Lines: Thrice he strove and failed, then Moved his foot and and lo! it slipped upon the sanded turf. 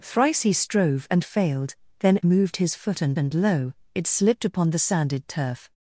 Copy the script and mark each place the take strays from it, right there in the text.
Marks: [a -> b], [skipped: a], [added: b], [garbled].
Thrice he strove and failed, then Moved his foot and and lo! it slipped upon the sanded turf.